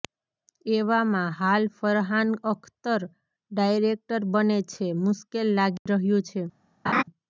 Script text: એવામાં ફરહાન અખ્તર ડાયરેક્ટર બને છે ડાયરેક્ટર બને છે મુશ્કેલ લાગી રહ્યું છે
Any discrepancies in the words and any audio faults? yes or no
yes